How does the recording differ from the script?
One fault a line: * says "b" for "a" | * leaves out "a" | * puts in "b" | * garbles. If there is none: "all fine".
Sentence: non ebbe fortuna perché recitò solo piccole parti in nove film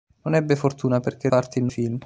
* leaves out "recitò solo piccole"
* leaves out "nove"